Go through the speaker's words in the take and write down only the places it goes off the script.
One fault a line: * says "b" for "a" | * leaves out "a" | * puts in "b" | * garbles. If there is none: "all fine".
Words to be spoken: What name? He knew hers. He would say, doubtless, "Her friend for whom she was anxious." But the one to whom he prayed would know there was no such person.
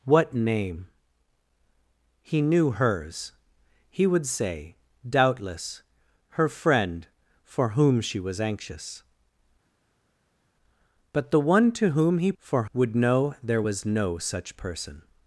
* says "for" for "prayed"